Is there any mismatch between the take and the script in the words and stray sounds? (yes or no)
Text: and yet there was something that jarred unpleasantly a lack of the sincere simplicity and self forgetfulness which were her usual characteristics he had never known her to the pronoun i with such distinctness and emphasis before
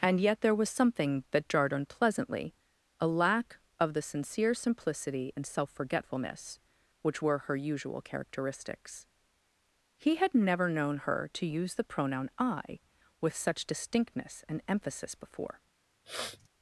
yes